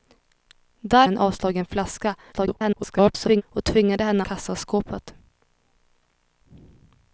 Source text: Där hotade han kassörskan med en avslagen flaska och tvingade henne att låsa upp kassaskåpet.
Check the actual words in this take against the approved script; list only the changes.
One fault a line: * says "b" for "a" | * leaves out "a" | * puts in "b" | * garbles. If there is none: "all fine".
* leaves out "hotade han kassörskan"
* garbles
* leaves out "att låsa upp"